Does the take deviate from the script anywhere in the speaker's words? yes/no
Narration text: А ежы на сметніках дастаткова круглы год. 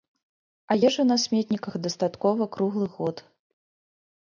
no